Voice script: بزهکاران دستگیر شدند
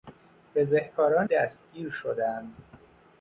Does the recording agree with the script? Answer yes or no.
yes